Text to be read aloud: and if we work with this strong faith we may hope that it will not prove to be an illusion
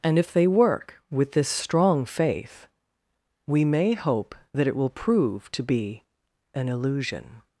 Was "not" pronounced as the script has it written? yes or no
no